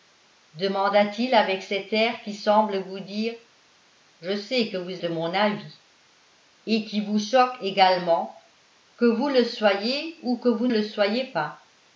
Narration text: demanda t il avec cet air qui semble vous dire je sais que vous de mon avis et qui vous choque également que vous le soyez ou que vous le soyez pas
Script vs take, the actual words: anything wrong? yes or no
no